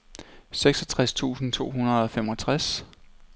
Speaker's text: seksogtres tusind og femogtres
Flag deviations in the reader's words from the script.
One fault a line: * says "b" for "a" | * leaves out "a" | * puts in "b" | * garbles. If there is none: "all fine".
* puts in "to hundrede"